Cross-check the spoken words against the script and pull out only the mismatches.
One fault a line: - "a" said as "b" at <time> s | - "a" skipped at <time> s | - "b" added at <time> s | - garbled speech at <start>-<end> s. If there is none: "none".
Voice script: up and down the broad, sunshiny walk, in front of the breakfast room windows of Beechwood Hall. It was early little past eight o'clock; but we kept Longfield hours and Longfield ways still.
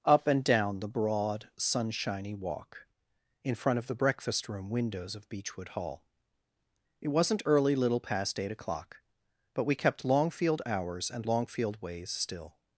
- "was" said as "wasn't" at 7.1 s